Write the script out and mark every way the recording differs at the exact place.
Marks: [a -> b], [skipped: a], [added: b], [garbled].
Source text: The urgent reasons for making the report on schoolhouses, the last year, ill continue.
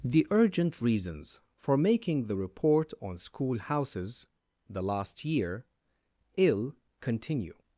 The urgent reasons for making the report on schoolhouses, the last year, ill continue.